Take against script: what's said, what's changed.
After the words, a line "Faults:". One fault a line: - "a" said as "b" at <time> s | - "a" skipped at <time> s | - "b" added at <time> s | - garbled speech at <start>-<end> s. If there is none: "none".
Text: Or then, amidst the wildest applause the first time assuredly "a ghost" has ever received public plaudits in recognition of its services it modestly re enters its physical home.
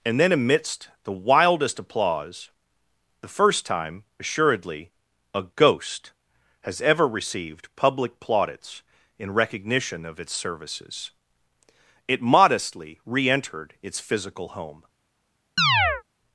And then, amidst the wildest applause the first time assuredly "a ghost" has ever received public plaudits in recognition of its services it modestly re entered its physical home.
Faults:
- "Or" said as "And" at 0.0 s
- "enters" said as "entered" at 13.3 s